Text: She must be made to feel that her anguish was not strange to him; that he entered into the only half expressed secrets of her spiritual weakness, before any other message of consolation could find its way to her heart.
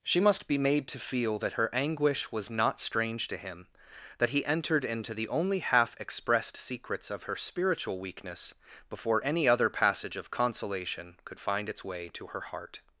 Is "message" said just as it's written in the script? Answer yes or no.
no